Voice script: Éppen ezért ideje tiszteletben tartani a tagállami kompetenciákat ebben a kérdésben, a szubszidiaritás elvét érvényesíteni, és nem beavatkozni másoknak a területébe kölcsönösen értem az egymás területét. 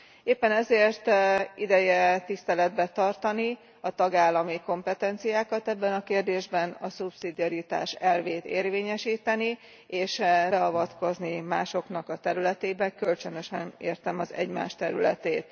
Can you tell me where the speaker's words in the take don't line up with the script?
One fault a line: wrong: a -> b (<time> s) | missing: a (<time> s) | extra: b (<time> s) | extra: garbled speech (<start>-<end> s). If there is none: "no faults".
missing: nem (10.2 s)